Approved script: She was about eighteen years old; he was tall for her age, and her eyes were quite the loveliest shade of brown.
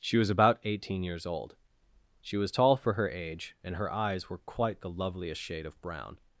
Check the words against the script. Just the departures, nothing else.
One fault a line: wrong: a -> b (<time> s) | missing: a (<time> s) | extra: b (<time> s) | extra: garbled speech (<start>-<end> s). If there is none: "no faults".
wrong: he -> she (2.2 s)